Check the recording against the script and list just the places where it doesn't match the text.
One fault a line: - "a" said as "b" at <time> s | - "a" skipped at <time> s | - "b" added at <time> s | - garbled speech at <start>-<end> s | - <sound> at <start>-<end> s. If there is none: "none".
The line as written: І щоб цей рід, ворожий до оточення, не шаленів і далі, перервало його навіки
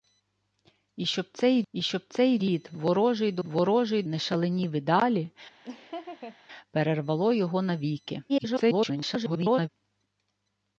- "і щоб цей" added at 1.7 s
- "оточення" said as "ворожий" at 3.4 s
- laugh at 5.6-6.4 s
- garbled speech at 8.3-9.7 s